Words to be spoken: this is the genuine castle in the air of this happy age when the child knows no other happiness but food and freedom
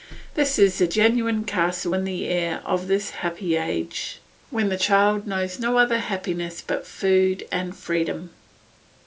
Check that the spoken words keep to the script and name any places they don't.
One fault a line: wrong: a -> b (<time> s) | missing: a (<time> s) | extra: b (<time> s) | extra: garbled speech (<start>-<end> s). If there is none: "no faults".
no faults